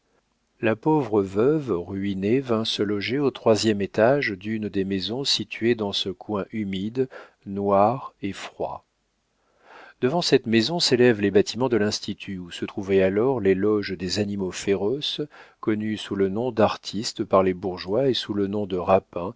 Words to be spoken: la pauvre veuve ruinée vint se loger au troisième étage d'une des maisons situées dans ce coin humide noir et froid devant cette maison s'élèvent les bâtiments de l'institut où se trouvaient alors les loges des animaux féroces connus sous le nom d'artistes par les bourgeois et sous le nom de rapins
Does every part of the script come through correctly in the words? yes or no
yes